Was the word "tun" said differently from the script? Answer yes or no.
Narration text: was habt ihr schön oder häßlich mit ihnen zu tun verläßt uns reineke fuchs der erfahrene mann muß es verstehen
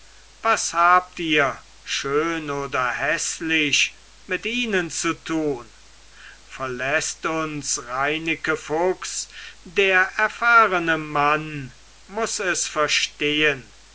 no